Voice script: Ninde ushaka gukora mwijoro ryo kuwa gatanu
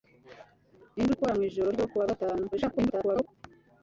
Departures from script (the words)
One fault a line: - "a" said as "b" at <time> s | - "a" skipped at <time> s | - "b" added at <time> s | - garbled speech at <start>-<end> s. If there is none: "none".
- "ushaka" skipped at 1.1 s
- garbled speech at 2.5-3.3 s